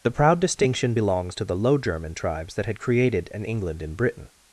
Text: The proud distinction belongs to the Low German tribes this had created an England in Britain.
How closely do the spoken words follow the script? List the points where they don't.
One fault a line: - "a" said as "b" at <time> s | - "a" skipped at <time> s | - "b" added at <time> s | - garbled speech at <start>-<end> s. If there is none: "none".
- "this" said as "that" at 2.5 s